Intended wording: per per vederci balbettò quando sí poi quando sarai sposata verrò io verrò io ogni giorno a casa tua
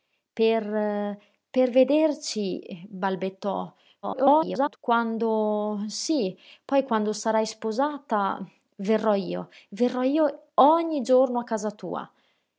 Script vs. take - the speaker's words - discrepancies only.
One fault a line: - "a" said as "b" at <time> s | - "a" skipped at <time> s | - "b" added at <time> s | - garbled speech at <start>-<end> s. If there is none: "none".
- garbled speech at 4.0-4.8 s